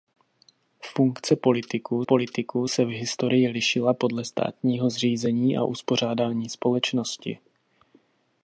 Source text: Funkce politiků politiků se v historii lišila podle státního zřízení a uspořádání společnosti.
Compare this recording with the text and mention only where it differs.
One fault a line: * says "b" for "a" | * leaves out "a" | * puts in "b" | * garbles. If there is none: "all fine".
all fine